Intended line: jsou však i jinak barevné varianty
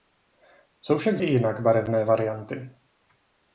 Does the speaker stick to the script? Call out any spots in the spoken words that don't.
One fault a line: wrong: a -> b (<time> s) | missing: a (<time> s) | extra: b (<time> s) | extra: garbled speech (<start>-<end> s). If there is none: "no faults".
no faults